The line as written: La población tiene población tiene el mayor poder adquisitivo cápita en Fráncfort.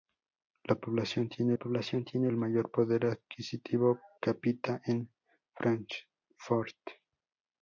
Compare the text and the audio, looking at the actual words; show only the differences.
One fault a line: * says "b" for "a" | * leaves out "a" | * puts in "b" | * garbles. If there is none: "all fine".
all fine